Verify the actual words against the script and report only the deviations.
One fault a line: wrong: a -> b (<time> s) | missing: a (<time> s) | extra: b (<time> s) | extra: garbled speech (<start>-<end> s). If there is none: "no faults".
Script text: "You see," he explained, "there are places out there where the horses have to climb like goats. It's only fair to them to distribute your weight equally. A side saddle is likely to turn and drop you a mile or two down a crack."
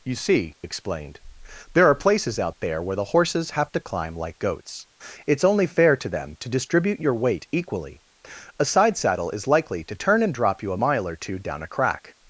missing: he (0.6 s)